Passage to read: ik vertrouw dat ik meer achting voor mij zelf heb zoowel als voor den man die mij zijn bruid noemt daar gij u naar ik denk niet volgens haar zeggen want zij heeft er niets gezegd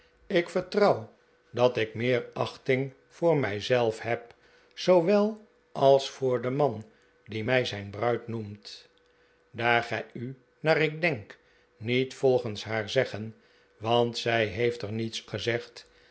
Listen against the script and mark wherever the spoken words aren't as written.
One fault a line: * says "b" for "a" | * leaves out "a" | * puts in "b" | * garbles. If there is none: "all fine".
all fine